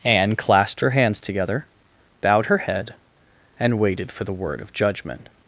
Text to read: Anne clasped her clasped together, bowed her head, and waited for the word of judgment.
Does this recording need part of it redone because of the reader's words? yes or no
yes